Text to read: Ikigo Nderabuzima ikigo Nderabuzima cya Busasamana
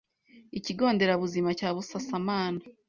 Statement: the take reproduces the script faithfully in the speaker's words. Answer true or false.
false